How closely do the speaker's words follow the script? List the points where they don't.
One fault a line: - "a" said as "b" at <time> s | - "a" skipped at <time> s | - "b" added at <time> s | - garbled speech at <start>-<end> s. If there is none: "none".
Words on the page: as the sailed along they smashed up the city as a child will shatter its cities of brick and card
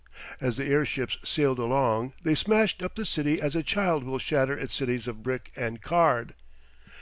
- "airships" added at 0.7 s